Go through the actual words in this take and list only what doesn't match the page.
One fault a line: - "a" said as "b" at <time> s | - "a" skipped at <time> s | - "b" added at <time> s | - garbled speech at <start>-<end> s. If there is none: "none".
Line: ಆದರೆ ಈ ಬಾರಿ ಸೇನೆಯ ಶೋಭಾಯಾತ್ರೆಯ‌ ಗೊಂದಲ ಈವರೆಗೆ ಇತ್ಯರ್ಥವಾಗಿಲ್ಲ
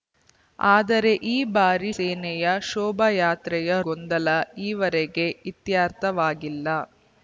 none